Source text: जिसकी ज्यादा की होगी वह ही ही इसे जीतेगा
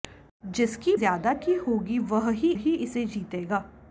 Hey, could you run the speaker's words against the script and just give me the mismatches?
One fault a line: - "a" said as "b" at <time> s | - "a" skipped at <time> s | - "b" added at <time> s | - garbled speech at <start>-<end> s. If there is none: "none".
none